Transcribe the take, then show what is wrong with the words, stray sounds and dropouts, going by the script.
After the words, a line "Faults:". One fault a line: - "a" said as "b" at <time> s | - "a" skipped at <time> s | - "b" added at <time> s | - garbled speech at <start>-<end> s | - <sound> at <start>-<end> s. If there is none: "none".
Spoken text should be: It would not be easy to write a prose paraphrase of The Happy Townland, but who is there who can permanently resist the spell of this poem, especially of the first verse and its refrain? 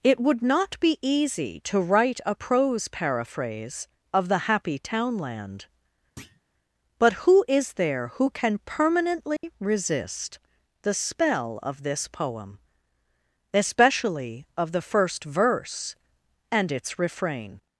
It would not be easy to write a prose paraphrase of The Happy Townland, but who is there who can permanently resist the spell of this poem, especially of the first verse and its refrain?
Faults:
- thud at 6.2-6.4 s
- dropout at 9.4-9.4 s